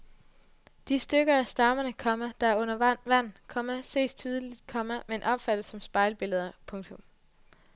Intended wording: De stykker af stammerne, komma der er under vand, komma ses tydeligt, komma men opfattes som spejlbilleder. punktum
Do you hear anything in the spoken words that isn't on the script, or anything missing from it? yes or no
no